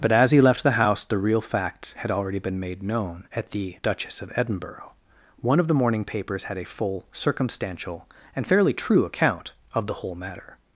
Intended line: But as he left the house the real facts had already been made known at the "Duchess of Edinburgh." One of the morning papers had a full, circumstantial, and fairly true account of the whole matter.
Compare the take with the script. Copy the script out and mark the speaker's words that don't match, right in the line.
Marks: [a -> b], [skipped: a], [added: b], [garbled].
But as he left the house the real facts had already been made known at the "Duchess of Edinburgh." One of the morning papers had a full, circumstantial, and fairly true account of the whole matter.